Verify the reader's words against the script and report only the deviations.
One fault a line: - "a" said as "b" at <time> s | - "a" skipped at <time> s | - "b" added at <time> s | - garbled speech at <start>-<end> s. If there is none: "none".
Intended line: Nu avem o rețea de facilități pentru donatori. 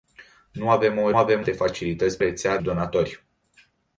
- "rețea" said as "avem" at 1.2 s
- "pentru" said as "rețea" at 2.2 s